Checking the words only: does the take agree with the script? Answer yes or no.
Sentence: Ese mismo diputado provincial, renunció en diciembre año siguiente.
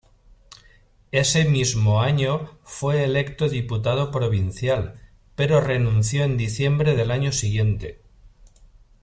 no